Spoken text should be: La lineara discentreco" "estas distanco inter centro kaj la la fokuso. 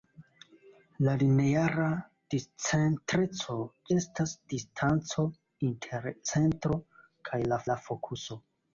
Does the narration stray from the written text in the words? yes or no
no